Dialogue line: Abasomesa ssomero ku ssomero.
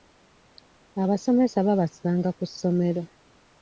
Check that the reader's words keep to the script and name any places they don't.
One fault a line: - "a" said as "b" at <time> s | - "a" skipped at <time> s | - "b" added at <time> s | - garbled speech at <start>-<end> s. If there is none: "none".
- "ssomero" said as "babasanga" at 1.7 s